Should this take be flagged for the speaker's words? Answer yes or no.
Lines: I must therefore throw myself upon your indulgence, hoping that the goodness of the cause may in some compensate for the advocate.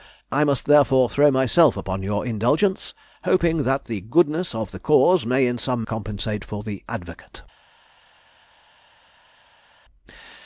no